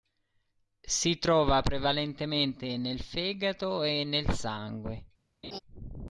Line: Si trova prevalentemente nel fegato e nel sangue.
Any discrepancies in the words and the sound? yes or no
yes